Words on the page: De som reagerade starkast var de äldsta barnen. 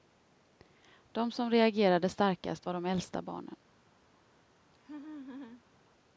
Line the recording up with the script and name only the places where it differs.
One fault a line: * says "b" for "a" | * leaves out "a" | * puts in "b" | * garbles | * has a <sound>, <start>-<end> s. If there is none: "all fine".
* has a laugh, 4.7-5.6 s